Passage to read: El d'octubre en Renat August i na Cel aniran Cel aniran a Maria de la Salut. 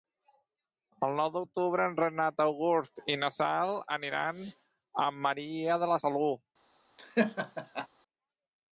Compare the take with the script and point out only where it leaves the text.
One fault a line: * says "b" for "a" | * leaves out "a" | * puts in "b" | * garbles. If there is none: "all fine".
* puts in "nou"
* leaves out "Cel aniran"